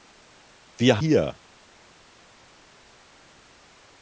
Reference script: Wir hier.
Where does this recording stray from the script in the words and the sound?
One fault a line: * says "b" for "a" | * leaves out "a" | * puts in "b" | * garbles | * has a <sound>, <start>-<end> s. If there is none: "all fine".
all fine